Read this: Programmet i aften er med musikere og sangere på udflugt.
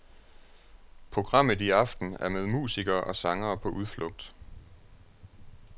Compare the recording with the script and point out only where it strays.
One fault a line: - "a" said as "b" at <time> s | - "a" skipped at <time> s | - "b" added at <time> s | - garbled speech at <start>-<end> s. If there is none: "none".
none